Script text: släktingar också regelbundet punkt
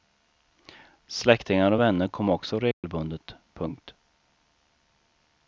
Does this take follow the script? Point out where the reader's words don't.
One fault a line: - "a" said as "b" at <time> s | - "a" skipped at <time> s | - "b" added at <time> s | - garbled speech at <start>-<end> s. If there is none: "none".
- "och vänner kom" added at 1.7 s